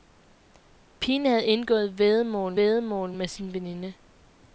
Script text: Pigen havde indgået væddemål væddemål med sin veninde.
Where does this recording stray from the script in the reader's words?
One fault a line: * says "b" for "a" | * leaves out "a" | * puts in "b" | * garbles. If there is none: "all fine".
all fine